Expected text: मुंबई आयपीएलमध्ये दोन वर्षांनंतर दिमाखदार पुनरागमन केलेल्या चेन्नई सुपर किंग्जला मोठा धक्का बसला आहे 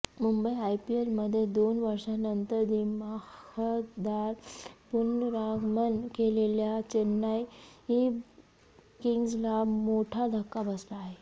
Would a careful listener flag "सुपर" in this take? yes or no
yes